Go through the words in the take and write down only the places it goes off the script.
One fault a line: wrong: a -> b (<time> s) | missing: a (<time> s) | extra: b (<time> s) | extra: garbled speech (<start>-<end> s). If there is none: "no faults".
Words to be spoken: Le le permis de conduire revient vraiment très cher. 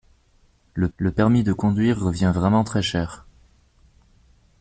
no faults